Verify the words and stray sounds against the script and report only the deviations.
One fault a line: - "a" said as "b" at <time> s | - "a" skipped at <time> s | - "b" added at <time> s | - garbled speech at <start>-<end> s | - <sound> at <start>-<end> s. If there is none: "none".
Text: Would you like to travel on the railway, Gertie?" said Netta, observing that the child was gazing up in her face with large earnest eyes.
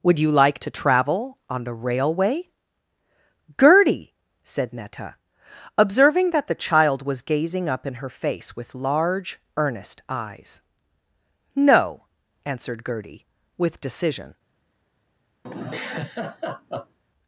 - "No answered Gertie with decision" added at 11.5 s
- laugh at 15.4-17.0 s